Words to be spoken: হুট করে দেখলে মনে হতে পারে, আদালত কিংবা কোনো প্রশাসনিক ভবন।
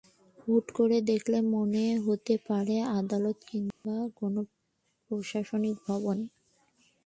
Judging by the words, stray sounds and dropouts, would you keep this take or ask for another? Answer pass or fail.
fail